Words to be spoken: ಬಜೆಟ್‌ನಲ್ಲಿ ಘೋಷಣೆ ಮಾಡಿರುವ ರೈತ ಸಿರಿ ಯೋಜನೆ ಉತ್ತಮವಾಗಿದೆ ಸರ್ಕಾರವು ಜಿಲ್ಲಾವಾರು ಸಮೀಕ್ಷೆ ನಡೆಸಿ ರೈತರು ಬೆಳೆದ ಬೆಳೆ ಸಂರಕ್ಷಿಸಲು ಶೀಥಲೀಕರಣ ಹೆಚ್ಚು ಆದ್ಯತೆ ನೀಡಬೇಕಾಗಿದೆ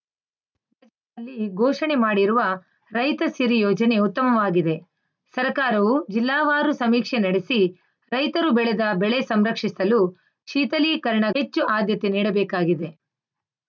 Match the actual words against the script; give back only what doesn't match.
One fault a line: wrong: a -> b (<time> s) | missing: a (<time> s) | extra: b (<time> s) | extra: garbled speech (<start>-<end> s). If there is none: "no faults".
no faults